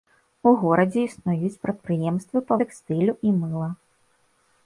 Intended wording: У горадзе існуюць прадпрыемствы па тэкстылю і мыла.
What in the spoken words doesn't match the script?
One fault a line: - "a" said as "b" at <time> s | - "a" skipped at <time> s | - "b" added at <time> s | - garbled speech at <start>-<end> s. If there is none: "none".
none